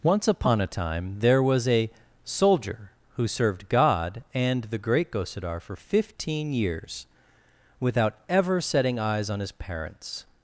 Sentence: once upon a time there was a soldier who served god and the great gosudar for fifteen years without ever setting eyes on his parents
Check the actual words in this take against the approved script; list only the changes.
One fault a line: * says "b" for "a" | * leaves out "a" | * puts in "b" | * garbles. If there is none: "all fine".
all fine